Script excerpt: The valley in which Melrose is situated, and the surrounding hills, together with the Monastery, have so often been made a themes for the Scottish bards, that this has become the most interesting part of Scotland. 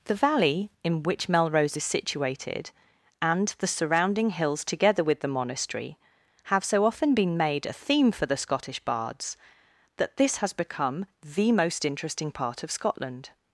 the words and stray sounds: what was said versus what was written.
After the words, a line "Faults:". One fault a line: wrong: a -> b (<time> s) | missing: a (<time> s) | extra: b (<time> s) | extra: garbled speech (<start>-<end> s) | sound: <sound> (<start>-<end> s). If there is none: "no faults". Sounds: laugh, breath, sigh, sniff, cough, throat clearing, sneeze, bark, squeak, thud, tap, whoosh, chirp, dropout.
The valley in which Melrose is situated, and the surrounding hills, together with the Monastery, have so often been made a theme for the Scottish bards, that this has become the most interesting part of Scotland.
Faults:
wrong: themes -> theme (7.7 s)